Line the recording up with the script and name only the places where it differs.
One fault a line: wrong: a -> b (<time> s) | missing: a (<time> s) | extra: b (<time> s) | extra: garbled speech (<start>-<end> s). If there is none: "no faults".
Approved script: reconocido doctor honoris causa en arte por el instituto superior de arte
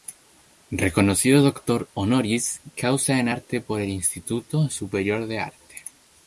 no faults